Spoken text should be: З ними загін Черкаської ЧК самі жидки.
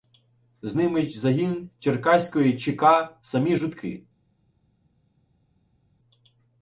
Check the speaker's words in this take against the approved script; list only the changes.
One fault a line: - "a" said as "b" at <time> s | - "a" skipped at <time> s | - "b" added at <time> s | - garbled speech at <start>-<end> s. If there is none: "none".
none